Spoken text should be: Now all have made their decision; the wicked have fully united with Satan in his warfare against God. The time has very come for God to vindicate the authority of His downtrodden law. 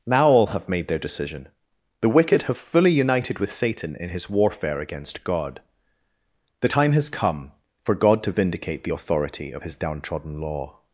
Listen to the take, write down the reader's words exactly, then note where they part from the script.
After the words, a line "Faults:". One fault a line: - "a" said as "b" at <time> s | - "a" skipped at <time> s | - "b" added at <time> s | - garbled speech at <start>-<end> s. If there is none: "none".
Now all have made their decision; the wicked have fully united with Satan in his warfare against God. The time has come for God to vindicate the authority of His downtrodden law.
Faults:
- "very" skipped at 7.1 s